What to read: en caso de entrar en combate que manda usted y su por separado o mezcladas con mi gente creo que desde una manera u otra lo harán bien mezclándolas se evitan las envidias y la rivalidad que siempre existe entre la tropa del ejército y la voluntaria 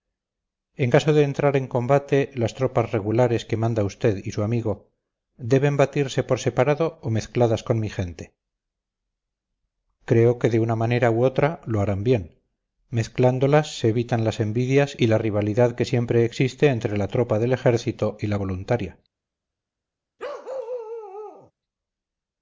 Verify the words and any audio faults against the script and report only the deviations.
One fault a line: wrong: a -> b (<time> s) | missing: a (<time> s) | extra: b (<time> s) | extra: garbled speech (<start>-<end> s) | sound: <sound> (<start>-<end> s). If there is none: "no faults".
extra: las tropas regulares (2.3 s)
extra: amigo deben batirse (4.4 s)
wrong: desde -> de (10.5 s)
sound: bark (20.2-21.5 s)